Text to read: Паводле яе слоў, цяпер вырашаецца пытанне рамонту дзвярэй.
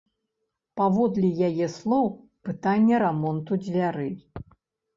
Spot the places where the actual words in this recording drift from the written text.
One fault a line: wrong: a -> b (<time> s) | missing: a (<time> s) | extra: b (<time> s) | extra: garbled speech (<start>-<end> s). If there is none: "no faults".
missing: цяпер вырашаецца (2.1 s)